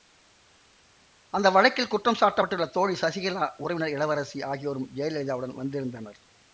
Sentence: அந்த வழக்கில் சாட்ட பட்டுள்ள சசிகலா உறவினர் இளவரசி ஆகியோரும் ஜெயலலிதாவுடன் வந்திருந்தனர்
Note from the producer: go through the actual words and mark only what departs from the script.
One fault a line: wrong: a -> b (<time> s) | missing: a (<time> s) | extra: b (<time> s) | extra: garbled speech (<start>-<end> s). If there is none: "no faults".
extra: குற்றம் (1.9 s)
extra: தோழி (2.7 s)